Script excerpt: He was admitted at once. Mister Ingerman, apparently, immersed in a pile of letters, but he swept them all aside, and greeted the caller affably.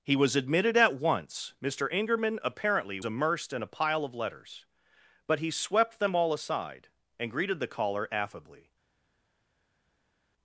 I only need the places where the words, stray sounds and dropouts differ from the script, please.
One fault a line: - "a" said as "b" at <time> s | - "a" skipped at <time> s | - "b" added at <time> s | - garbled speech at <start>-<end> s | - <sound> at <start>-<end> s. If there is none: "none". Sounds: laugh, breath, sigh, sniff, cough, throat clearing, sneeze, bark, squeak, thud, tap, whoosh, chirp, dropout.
none